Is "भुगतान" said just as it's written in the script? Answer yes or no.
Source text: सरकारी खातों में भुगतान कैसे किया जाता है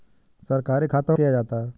no